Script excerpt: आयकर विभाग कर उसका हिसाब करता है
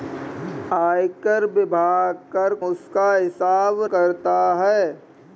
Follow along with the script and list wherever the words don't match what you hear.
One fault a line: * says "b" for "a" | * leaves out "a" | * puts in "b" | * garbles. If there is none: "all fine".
all fine